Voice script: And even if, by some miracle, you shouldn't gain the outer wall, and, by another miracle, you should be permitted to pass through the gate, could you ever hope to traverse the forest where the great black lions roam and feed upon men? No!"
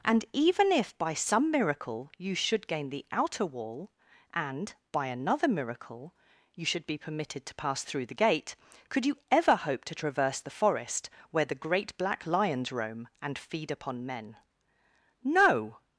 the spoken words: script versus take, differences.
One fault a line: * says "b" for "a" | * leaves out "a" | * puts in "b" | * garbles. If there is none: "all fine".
* says "should" for "shouldn't"